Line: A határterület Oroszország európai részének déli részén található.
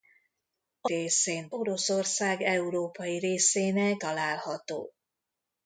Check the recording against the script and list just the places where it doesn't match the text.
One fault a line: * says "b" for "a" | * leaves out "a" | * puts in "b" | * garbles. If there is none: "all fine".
* says "részén" for "határterület"
* leaves out "déli részén"